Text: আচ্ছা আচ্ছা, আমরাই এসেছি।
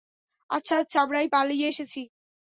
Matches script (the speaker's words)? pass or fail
fail